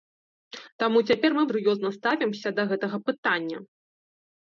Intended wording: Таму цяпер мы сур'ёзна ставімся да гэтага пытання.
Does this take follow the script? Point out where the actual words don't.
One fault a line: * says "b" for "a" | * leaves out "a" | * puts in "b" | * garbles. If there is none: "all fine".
all fine